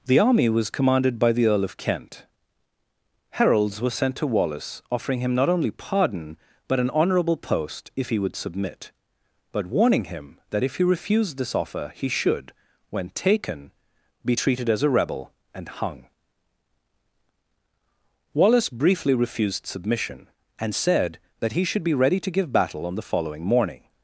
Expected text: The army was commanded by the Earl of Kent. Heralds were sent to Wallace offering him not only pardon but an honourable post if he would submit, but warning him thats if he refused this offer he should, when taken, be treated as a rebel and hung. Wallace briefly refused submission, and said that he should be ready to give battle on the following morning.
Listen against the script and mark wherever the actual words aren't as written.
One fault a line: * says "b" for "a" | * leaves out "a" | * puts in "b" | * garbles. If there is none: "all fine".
* says "that" for "thats"